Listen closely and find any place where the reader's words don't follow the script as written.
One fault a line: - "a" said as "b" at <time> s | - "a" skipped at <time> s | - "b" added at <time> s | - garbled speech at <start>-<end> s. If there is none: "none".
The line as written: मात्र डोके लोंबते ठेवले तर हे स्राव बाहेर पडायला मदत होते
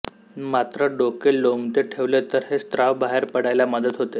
none